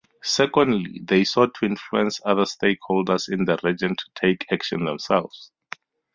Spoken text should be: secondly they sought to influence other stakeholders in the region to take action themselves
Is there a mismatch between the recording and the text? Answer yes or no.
no